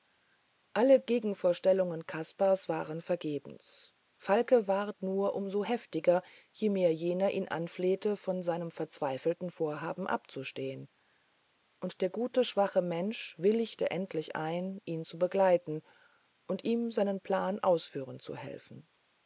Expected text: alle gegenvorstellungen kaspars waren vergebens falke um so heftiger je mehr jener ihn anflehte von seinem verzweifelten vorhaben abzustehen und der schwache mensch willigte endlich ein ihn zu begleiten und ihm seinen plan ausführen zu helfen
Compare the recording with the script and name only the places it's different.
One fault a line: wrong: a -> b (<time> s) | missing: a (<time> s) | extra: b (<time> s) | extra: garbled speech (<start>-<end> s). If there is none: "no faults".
extra: ward nur (4.7 s)
extra: gute (12.1 s)